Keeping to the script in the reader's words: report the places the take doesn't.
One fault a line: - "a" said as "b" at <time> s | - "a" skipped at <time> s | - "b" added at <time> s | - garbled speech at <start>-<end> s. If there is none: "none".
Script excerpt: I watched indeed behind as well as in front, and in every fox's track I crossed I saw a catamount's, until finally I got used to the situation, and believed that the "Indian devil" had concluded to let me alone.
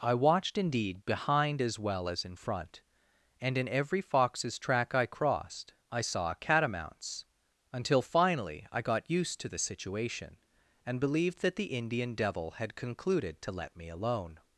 - "a" skipped at 6.3 s